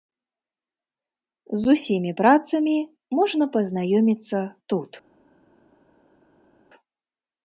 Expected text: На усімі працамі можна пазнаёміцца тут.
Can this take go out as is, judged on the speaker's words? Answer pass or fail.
fail